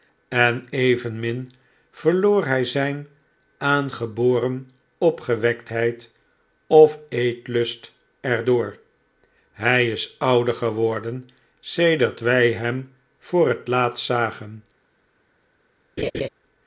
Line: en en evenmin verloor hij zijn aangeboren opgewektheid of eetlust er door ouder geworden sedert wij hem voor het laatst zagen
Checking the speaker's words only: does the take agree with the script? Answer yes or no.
no